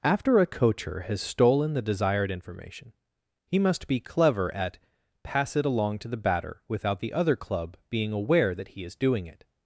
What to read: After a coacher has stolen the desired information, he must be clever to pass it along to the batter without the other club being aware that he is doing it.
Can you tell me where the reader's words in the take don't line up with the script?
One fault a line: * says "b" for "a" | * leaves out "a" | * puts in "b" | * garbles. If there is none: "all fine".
* says "at" for "to"